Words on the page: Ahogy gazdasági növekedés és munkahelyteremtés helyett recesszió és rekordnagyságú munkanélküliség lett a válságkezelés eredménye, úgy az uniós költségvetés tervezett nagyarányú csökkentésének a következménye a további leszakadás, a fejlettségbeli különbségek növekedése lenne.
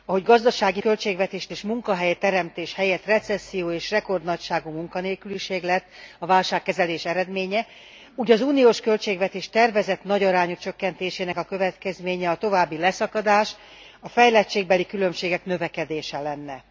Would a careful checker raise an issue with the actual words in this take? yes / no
yes